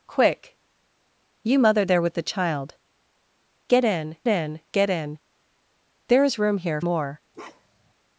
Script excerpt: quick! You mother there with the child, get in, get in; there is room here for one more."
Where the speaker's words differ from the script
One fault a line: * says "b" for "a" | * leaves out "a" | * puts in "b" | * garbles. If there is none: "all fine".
* puts in "in"
* leaves out "for one"